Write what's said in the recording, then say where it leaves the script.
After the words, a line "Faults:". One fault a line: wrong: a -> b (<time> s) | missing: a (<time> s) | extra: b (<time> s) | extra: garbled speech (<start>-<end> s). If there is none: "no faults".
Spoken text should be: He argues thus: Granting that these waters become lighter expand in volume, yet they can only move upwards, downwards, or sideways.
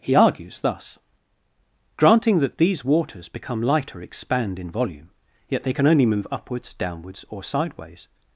He argues thus: Granting that these waters become lighter expand in volume, yet they can only move upwards, downwards, or sideways.
Faults:
no faults